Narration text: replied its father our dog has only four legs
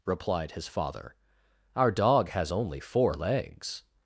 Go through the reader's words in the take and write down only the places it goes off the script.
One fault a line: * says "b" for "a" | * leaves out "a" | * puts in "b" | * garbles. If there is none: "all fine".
* says "his" for "its"